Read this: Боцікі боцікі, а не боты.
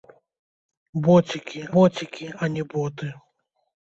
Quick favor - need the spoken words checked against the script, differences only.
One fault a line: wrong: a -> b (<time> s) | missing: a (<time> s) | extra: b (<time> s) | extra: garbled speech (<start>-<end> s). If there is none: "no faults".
no faults